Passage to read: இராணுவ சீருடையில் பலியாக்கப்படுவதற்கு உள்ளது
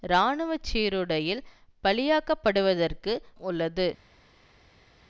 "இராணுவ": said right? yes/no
yes